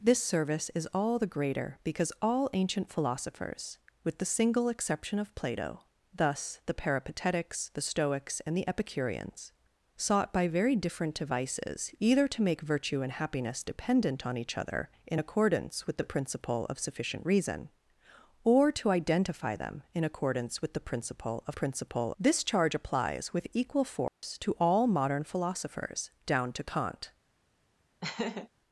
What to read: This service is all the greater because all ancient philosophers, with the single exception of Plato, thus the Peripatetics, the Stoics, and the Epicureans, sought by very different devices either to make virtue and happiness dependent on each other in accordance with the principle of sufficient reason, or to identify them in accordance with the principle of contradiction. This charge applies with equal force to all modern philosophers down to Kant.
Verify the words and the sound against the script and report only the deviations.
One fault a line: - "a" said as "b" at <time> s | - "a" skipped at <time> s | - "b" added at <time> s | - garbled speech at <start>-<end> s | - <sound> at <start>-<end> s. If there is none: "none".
- "contradiction" said as "principle" at 21.6 s
- dropout at 24.1-24.2 s
- laugh at 28.0-28.5 s